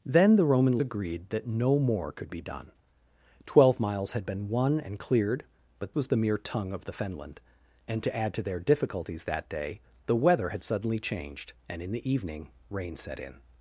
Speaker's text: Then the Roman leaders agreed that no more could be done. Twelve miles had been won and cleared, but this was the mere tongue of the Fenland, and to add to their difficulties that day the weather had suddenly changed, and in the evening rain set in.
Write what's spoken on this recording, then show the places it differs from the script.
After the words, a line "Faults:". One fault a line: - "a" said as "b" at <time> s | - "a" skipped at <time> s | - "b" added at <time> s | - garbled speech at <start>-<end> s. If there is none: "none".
Then the Roman agreed that no more could be done. Twelve miles had been won and cleared, but was the mere tongue of the Fenland, and to add to their difficulties that day the weather had suddenly changed, and in the evening rain set in.
Faults:
- "leaders" skipped at 0.8 s
- "this" skipped at 6.0 s